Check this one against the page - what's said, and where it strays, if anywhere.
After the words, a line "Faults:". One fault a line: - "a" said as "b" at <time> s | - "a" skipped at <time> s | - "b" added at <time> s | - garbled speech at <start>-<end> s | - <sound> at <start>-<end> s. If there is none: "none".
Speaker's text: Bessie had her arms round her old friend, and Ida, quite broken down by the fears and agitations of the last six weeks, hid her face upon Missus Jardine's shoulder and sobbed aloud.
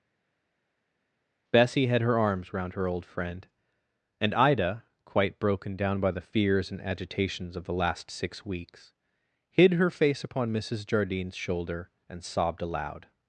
Bessie had her arms round her old friend, and Ida, quite broken down by the fears and agitations of the last six weeks, hid her face upon Missus Jardine's shoulder and sobbed aloud.
Faults:
none